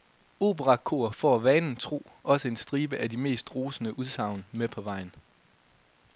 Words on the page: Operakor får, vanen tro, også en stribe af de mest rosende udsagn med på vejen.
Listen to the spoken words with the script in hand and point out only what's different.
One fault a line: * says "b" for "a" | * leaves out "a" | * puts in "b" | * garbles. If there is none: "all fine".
all fine